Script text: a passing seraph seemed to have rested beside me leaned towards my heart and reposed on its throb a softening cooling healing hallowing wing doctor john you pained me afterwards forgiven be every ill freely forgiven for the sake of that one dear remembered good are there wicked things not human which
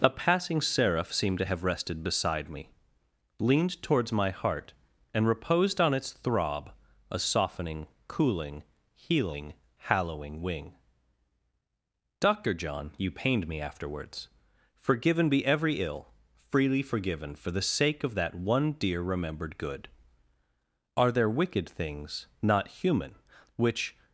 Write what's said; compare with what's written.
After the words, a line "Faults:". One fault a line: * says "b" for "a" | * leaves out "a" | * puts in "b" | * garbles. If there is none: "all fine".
a passing seraph seemed to have rested beside me leaned towards my heart and reposed on its throb a softening cooling healing hallowing wing doctor john you pained me afterwards forgiven be every ill freely forgiven for the sake of that one dear remembered good are there wicked things not human which
Faults:
all fine